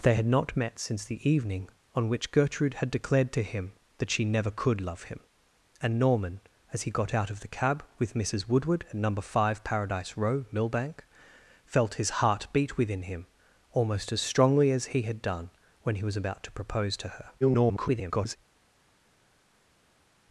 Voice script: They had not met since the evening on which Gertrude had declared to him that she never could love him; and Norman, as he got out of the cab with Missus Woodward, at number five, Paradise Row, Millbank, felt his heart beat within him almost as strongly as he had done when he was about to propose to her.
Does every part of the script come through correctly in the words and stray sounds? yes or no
no